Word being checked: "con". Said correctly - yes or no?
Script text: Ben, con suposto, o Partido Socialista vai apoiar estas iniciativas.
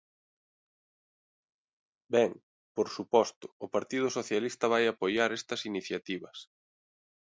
no